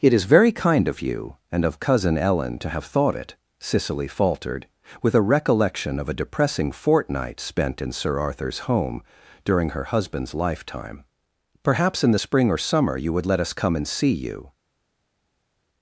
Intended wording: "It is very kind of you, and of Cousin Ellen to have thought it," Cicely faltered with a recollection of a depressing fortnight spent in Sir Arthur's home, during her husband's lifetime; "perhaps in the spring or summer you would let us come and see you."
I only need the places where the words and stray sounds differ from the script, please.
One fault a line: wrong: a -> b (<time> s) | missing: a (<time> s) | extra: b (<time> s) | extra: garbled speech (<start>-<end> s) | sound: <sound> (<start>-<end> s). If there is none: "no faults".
no faults